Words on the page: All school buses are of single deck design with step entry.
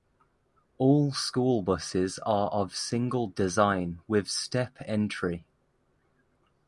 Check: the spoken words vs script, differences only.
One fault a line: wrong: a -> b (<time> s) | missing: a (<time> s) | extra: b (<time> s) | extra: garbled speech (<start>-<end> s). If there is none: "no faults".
missing: deck (3.3 s)